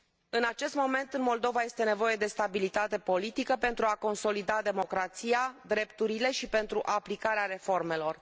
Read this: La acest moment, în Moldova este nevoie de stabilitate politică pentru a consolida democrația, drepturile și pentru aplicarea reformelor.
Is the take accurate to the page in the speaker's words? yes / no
no